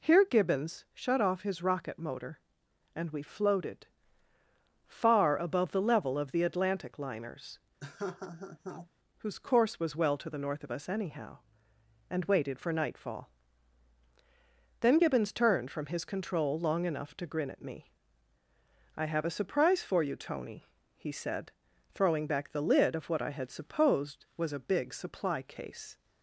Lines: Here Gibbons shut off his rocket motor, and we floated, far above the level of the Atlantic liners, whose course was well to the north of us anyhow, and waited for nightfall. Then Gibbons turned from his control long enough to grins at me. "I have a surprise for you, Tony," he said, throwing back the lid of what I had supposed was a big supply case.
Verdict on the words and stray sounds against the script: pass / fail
fail